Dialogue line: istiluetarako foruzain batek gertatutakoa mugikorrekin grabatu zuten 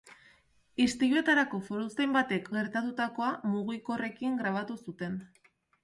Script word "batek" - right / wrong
right